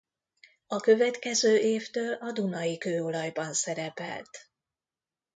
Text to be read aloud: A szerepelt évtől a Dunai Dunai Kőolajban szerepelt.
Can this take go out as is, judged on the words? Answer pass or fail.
fail